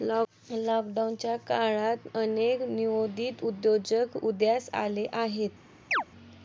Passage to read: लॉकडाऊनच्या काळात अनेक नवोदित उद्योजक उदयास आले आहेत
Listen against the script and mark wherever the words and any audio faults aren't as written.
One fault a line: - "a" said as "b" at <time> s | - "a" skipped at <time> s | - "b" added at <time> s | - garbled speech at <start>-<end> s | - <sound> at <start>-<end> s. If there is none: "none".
- chirp at 5.9-6.0 s